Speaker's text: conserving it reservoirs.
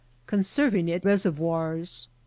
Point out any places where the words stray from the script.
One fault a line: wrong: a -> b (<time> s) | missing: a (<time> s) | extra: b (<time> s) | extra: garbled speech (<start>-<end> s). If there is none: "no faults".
no faults